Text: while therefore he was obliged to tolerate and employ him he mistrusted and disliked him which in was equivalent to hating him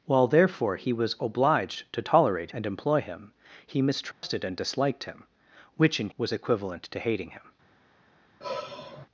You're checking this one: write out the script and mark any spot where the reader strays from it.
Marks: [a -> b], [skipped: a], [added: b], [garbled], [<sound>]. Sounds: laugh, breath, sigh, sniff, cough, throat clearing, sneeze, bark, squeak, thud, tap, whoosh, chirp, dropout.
while therefore he was obliged to tolerate and employ him he mistrusted [dropout] and disliked him which in was equivalent to hating him [sigh]